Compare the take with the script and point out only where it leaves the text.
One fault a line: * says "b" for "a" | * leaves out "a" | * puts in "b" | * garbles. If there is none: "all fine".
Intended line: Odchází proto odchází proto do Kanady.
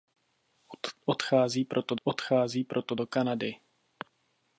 all fine